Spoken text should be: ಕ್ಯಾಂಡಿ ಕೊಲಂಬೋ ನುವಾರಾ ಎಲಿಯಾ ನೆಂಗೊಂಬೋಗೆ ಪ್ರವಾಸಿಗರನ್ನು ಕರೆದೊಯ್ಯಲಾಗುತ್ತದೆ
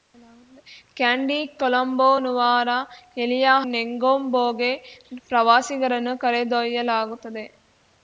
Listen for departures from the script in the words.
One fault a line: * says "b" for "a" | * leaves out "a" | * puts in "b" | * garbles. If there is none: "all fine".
all fine